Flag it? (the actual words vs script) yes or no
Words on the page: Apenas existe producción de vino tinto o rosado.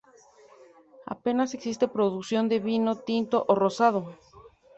no